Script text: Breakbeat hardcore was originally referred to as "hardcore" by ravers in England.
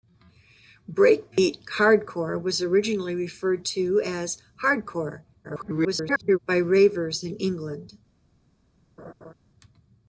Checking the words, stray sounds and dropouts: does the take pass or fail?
fail